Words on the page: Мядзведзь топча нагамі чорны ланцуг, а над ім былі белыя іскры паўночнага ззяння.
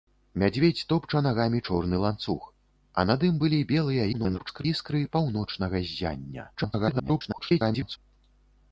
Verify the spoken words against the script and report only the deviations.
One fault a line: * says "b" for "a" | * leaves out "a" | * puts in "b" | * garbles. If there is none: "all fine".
* garbles
* garbles